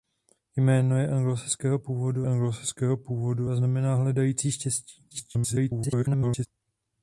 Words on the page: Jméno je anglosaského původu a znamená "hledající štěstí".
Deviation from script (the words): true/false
true